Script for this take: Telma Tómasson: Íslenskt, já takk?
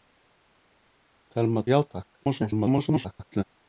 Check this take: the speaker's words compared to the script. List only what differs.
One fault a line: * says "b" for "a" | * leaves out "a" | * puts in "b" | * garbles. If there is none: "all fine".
* leaves out "Tómasson Íslenskt"
* garbles